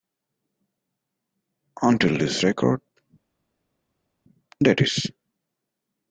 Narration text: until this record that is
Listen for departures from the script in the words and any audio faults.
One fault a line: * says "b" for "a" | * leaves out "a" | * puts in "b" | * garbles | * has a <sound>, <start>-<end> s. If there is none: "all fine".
all fine